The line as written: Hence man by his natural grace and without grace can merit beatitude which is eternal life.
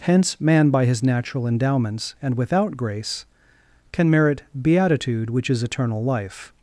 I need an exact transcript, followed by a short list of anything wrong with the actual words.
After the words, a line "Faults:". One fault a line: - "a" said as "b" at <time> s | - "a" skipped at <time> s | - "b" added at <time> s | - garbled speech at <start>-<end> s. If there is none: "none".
Hence man by his natural endowments and without grace can merit beatitude which is eternal life.
Faults:
- "grace" said as "endowments" at 1.4 s